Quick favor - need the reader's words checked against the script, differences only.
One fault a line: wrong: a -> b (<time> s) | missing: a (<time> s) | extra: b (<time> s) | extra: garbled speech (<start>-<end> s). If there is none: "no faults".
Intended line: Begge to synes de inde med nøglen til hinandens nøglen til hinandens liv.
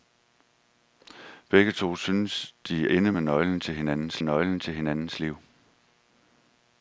no faults